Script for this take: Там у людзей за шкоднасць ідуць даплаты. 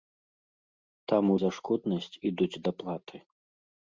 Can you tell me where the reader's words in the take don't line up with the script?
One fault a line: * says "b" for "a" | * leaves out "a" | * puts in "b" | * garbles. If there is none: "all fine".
* leaves out "людзей"